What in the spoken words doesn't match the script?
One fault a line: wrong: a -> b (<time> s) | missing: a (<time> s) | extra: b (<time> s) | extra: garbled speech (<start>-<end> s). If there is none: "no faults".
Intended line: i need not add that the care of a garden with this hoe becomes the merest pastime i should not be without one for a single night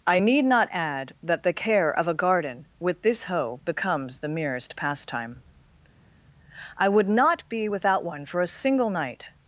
wrong: should -> would (6.9 s)